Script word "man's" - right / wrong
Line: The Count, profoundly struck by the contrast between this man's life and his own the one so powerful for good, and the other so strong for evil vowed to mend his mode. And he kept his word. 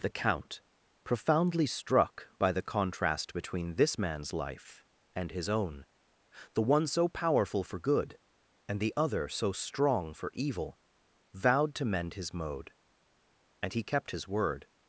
right